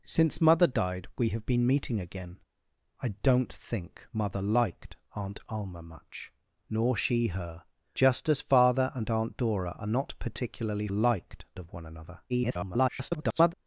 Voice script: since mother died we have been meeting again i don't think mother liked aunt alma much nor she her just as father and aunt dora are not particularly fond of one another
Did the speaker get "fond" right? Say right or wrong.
wrong